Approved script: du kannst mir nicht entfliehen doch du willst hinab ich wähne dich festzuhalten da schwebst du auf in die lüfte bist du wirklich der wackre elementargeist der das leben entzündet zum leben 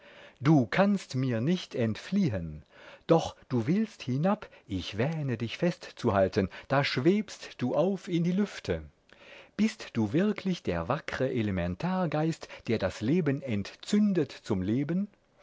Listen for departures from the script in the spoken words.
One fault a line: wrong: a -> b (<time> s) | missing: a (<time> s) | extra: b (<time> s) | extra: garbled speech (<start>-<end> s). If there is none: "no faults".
no faults